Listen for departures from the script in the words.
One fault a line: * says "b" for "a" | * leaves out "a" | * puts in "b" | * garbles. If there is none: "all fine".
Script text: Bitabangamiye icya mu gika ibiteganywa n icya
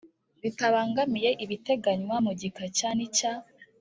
* says "ibiteganywa" for "icya"
* says "cya" for "ibiteganywa"